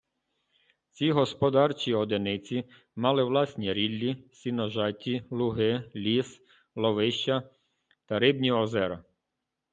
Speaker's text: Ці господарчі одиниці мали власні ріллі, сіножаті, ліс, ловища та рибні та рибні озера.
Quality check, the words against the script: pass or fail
fail